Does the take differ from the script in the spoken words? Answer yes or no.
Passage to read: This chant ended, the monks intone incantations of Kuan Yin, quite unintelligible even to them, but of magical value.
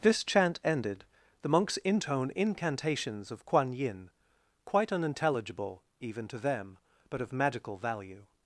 no